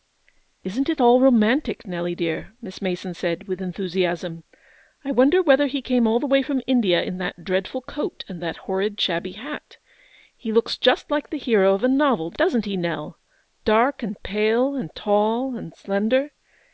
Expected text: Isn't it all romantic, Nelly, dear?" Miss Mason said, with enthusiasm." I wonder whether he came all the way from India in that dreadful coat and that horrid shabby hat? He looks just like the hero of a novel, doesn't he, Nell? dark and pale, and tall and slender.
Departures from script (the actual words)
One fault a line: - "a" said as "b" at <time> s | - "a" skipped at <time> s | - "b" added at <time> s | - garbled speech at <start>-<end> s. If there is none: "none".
none